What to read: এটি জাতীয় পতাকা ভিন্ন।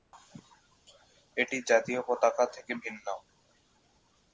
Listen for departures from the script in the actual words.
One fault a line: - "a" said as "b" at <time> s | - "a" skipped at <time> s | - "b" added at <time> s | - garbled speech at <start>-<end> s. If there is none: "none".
- "থেকে" added at 2.5 s